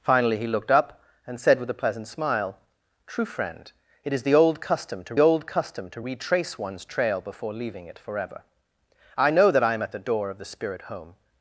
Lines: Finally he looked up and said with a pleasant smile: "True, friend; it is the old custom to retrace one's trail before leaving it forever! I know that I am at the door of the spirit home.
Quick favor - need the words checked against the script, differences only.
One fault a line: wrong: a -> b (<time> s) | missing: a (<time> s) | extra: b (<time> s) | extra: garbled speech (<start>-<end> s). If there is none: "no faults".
extra: old custom to (5.2 s)